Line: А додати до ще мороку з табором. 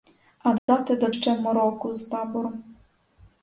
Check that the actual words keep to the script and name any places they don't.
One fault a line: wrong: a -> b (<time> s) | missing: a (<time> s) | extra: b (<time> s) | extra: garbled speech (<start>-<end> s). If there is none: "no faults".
no faults